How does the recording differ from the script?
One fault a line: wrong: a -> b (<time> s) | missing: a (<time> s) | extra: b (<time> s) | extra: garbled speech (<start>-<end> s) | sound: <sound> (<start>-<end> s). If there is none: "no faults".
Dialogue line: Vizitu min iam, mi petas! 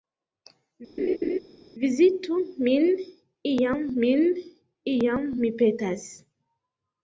sound: laugh (1.0-1.4 s)
extra: min iam (4.0 s)